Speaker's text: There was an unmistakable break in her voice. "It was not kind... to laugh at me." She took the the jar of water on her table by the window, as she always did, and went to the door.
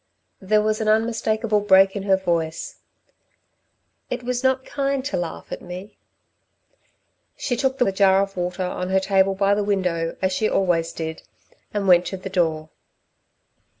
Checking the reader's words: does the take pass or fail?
pass